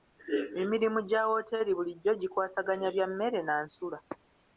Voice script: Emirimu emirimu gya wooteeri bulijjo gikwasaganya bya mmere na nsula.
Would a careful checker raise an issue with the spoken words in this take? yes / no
yes